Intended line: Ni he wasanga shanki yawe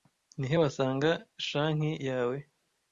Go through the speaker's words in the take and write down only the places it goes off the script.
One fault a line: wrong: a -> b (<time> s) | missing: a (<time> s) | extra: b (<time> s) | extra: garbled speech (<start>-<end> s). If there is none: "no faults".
no faults